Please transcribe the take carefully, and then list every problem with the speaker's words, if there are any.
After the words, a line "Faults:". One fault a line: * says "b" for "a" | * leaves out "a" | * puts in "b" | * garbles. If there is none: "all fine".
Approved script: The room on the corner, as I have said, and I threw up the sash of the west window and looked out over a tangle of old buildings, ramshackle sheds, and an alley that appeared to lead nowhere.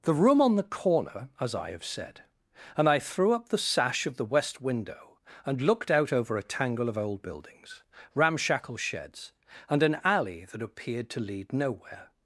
The room on the corner, as I have said, and I threw up the sash of the west window and looked out over a tangle of old buildings, ramshackle sheds, and an alley that appeared to lead nowhere.
Faults:
all fine